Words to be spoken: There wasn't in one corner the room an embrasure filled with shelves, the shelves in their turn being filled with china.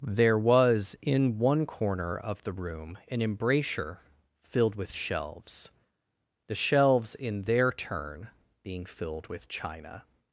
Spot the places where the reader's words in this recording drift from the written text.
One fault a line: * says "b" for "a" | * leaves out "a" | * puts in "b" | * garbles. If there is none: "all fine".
* says "was" for "wasn't"
* puts in "of"